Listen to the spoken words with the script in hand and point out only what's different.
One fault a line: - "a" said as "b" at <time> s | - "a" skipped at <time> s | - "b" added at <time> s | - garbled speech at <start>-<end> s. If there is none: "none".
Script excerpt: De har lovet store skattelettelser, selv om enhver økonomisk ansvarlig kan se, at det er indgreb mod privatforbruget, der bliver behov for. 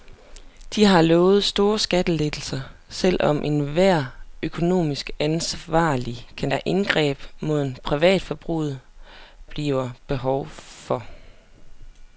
- "se at det" skipped at 6.5 s
- "der" skipped at 8.8 s